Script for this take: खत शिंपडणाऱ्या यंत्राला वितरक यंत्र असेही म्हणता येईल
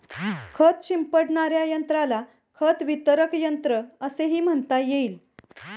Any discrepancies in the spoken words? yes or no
yes